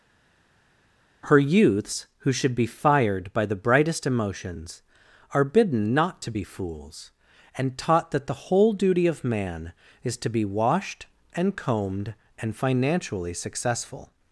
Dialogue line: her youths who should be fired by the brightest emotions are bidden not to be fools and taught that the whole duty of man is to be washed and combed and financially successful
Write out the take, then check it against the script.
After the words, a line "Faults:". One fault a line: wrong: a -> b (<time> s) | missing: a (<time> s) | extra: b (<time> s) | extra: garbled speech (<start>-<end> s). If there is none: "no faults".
her youths who should be fired by the brightest emotions are bidden not to be fools and taught that the whole duty of man is to be washed and combed and financially successful
Faults:
no faults